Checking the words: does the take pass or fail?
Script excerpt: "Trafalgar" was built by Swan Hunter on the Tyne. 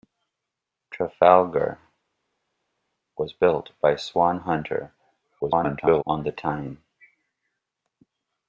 fail